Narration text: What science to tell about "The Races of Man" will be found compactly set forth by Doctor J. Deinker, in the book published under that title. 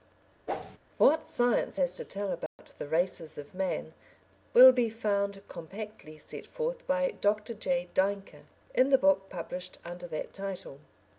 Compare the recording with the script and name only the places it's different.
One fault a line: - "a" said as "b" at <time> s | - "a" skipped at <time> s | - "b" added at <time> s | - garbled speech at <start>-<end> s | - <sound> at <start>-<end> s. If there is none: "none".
- whoosh at 0.5-0.8 s
- "has" added at 1.7 s
- dropout at 2.5-2.6 s